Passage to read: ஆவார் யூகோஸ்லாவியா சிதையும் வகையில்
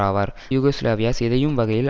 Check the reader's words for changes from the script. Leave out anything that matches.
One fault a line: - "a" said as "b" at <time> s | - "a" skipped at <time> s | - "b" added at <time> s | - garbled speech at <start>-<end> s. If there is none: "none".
none